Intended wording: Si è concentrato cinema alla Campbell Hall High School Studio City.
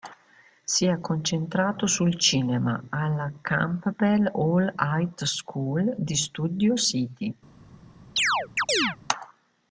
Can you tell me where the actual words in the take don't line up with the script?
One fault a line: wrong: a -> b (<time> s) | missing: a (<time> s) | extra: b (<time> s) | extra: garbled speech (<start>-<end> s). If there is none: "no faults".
extra: sul (1.9 s)
extra: di (6.0 s)